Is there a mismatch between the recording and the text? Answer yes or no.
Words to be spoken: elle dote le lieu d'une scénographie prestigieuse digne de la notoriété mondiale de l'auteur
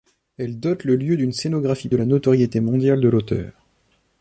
yes